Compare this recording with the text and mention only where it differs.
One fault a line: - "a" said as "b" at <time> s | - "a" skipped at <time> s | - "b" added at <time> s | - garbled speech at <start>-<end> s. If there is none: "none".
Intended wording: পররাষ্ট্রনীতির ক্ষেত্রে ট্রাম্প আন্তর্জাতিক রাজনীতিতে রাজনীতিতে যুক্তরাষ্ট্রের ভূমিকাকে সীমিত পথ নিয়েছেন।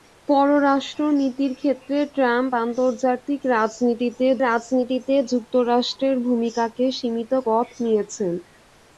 none